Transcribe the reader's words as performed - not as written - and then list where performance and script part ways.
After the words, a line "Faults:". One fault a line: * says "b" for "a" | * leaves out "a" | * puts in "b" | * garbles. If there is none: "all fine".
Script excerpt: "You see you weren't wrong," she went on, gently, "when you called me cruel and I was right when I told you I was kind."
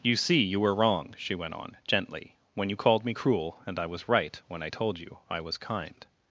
"You see you were wrong," she went on, gently, "when you called me cruel and I was right when I told you I was kind."
Faults:
* says "were" for "weren't"